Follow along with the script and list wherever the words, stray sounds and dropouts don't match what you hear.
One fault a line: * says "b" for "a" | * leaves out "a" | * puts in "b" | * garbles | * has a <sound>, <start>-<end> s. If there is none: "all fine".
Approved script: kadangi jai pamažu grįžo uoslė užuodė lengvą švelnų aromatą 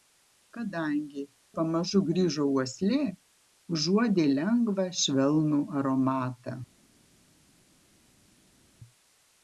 * leaves out "jai"